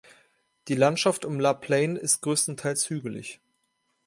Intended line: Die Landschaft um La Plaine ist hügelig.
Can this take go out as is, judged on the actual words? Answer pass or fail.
fail